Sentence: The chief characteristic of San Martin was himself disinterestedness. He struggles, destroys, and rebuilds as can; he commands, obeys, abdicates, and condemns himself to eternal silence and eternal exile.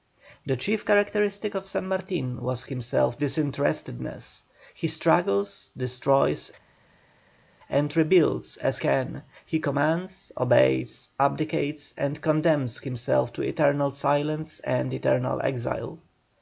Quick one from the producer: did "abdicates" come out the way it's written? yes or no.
yes